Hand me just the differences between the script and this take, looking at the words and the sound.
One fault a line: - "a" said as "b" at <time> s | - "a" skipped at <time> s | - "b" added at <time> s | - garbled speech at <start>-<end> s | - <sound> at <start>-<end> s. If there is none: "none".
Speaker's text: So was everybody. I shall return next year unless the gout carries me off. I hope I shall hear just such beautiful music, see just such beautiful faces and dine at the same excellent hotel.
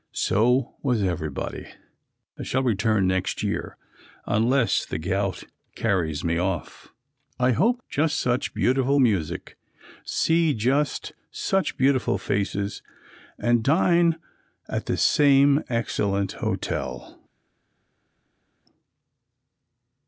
- "I shall hear" skipped at 7.8 s